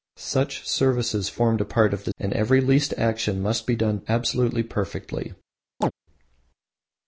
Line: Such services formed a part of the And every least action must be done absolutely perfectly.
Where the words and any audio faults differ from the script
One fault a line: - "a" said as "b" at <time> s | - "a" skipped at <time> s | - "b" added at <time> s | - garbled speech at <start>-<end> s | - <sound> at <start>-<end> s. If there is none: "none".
- chirp at 5.8-5.9 s